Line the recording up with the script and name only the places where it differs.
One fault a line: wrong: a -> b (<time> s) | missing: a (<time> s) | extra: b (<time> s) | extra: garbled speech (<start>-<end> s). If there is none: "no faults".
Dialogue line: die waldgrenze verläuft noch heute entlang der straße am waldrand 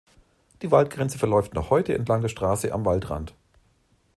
no faults